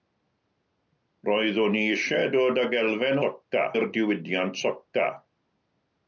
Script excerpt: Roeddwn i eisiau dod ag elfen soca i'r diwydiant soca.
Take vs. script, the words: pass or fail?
pass